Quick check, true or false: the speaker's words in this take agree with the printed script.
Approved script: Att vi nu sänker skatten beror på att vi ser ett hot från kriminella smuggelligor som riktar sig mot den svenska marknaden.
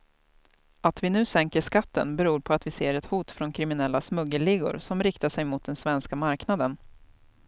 true